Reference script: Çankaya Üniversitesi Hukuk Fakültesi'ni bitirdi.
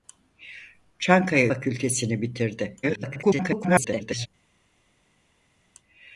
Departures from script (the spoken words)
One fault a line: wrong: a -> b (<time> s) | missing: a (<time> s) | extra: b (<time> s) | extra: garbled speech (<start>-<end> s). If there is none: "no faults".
missing: Üniversitesi Hukuk (1.5 s)
extra: garbled speech (2.8-4.3 s)